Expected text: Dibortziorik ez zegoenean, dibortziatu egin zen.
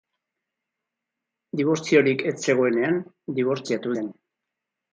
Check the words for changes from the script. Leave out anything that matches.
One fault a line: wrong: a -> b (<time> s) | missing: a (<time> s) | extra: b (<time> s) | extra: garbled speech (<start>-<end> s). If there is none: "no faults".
missing: egin (4.0 s)